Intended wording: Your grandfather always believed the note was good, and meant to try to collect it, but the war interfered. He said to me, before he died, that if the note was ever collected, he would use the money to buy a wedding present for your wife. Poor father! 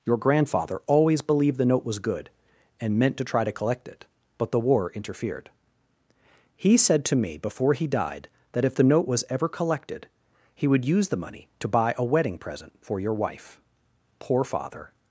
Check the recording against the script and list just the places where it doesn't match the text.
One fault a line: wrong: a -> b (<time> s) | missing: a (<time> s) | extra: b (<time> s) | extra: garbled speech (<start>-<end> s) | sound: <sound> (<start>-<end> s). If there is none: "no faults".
no faults